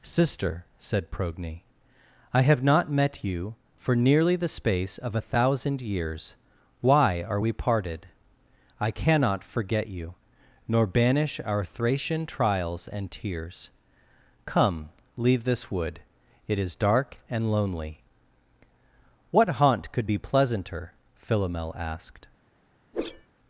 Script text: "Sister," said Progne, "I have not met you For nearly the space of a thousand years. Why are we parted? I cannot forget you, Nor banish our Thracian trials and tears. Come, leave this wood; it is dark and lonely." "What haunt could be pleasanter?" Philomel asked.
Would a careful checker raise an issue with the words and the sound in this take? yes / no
yes